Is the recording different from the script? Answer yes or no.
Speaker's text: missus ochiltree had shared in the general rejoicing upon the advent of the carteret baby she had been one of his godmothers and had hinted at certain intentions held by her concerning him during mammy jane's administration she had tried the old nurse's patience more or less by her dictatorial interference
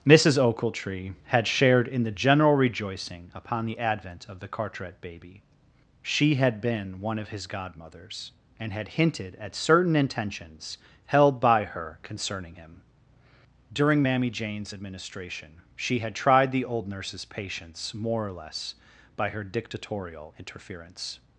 no